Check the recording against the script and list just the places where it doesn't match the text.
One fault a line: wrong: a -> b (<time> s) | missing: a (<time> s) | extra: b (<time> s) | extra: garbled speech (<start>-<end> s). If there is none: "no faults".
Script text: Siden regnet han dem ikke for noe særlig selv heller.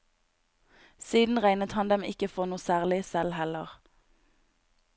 no faults